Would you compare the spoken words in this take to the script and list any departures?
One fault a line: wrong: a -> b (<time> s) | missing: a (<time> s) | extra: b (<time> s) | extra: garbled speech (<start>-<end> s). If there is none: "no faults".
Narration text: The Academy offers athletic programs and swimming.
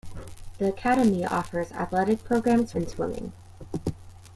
no faults